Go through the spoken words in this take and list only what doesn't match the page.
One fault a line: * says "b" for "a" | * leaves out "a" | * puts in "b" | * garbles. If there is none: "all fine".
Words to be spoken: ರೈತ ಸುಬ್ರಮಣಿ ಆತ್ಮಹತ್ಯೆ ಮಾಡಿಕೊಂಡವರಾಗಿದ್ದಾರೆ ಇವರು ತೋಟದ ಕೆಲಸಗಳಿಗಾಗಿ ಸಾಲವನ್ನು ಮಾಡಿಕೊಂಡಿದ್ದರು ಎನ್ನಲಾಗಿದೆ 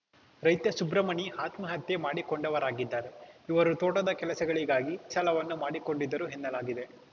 all fine